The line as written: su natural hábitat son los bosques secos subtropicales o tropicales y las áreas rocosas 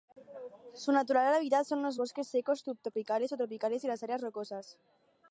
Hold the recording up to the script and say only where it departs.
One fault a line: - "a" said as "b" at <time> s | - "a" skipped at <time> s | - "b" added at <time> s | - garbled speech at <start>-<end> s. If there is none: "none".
none